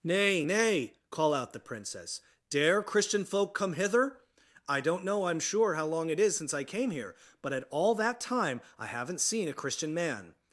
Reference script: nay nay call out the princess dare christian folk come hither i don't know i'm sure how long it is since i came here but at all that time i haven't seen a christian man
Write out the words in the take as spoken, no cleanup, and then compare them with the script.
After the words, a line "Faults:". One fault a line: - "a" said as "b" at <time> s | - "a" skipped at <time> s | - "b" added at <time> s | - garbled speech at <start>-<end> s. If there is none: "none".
nay nay call out the princess dare christian folk come hither i don't know i'm sure how long it is since i came here but at all that time i haven't seen a christian man
Faults:
none